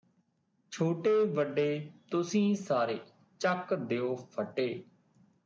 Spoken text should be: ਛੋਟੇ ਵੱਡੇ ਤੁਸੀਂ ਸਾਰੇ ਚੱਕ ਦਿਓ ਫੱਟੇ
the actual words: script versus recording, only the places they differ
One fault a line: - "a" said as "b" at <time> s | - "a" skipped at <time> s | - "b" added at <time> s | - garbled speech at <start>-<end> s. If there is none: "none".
none